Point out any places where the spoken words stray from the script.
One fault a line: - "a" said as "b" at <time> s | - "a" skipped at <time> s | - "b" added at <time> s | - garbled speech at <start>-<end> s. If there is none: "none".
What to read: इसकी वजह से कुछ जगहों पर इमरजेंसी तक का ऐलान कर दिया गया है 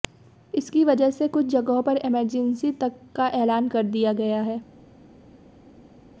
none